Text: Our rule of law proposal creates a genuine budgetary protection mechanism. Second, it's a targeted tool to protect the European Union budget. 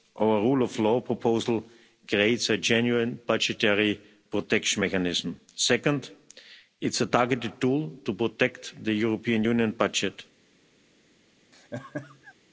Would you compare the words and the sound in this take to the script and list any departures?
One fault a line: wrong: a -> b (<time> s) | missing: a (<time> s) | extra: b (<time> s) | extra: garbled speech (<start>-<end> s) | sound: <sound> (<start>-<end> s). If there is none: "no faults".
sound: laugh (11.5-12.3 s)